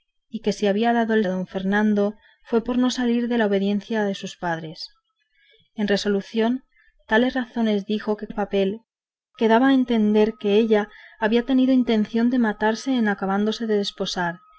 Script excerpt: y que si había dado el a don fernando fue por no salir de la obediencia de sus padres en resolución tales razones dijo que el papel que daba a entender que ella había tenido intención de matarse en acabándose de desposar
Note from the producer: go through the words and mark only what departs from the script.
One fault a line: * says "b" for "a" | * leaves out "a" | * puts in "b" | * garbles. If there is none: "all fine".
all fine